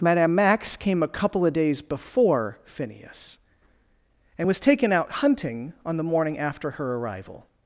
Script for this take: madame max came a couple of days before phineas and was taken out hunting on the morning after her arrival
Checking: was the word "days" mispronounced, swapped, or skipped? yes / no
no